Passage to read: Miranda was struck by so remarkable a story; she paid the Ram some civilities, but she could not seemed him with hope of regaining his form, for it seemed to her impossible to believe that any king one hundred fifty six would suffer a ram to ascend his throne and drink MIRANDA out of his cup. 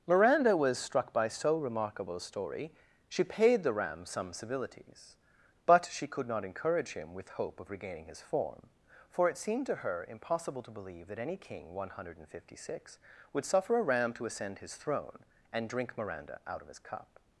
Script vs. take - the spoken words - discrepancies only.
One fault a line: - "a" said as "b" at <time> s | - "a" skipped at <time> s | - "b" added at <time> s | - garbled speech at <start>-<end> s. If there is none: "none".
- "seemed" said as "encourage" at 6.4 s